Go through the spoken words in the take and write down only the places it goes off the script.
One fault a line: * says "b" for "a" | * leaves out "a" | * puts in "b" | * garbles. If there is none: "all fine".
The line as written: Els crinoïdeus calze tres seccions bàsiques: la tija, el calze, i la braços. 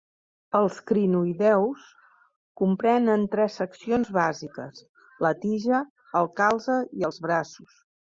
* says "comprenen" for "calze"
* says "els" for "la"